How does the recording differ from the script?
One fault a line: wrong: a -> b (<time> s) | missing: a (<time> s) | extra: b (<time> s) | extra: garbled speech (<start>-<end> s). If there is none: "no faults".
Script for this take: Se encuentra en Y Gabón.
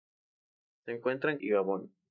no faults